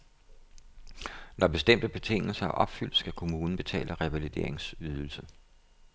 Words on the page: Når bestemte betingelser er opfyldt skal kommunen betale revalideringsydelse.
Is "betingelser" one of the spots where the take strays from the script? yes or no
no